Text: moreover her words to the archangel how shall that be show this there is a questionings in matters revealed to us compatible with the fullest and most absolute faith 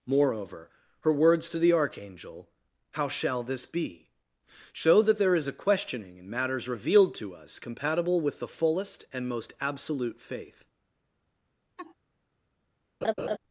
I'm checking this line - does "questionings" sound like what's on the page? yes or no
no